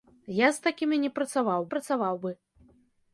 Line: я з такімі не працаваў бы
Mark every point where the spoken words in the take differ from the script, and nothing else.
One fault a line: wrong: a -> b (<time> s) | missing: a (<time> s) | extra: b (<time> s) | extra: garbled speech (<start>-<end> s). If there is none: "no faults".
extra: працаваў (1.7 s)